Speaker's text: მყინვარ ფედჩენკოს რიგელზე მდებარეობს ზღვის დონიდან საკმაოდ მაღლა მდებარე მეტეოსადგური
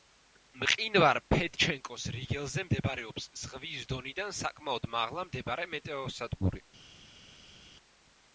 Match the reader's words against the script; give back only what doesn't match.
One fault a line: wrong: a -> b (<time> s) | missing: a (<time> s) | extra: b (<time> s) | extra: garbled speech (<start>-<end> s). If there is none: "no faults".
no faults